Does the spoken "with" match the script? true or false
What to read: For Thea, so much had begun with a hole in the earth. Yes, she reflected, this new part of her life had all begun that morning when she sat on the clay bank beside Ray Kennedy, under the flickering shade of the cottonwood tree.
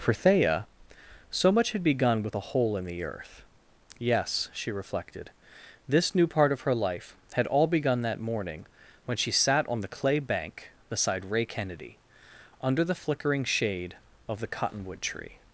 true